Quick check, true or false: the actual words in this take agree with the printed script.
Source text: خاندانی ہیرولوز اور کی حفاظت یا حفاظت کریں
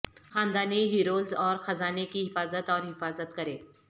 false